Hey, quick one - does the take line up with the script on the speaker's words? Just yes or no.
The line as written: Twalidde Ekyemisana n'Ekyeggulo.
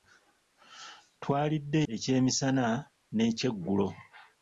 yes